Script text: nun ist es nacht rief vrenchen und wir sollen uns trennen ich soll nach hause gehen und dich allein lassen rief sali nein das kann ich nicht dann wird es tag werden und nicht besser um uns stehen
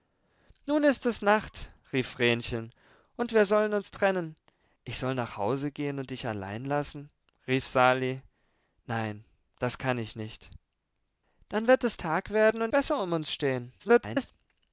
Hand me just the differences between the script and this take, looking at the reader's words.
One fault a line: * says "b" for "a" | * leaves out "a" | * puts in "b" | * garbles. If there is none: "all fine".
* leaves out "nicht"
* garbles